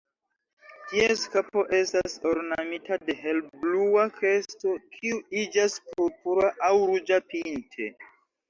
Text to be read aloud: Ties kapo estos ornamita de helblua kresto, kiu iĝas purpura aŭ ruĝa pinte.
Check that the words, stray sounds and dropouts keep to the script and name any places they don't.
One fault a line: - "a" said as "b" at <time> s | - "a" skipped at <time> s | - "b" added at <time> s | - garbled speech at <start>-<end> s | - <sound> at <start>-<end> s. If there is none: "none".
- "estos" said as "estas" at 1.8 s